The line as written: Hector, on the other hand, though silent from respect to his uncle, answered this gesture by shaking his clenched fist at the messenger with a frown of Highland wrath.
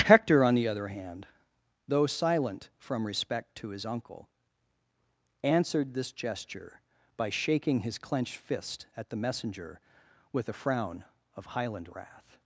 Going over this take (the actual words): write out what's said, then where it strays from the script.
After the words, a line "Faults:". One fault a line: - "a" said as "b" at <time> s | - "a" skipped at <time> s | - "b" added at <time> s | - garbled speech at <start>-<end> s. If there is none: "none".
Hector, on the other hand, though silent from respect to his uncle, answered this gesture by shaking his clenched fist at the messenger with a frown of Highland wrath.
Faults:
none